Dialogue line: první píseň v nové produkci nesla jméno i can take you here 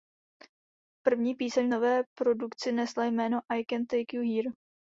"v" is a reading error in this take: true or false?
false